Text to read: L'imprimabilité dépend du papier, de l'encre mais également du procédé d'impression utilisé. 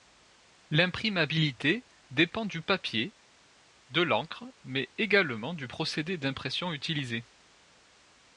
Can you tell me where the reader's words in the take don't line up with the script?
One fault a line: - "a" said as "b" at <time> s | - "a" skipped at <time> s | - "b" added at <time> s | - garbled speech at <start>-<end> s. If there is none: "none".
none